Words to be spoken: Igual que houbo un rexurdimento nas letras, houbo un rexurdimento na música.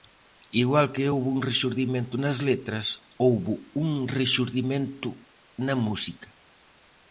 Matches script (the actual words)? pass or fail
pass